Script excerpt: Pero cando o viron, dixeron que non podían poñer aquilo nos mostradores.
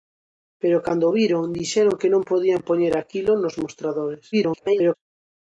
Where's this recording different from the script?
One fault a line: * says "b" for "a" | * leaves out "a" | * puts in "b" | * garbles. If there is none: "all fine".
* garbles